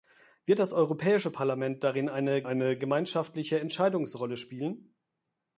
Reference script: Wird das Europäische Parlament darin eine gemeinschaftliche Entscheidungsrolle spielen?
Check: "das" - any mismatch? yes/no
no